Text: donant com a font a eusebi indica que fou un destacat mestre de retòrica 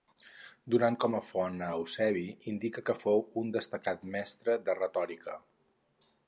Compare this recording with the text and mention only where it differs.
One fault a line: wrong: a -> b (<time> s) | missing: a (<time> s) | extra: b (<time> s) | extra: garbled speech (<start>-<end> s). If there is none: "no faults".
no faults